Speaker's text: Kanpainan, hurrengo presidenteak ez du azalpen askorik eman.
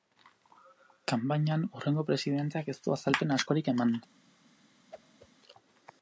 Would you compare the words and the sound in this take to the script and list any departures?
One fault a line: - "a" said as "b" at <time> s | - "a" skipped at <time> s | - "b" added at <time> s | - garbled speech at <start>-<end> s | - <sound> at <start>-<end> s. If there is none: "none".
- whoosh at 4.9-5.3 s